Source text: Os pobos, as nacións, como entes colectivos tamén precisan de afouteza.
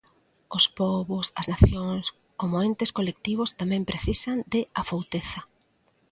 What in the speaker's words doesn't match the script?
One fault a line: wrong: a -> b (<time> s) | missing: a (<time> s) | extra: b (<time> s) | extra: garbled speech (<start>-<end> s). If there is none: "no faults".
no faults